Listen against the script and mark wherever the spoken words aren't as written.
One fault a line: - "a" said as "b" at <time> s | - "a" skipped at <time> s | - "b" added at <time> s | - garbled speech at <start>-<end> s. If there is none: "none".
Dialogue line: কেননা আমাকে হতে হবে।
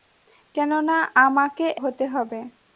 none